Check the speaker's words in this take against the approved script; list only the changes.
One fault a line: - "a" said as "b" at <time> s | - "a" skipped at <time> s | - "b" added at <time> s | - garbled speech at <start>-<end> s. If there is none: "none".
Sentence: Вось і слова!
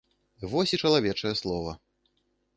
- "чалавечае" added at 0.8 s